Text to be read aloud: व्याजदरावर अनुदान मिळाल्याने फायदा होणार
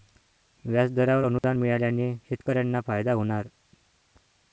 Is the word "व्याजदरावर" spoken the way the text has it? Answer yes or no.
yes